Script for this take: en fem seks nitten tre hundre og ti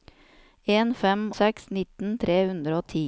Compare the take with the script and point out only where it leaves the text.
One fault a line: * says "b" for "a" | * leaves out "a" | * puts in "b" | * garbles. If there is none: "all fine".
all fine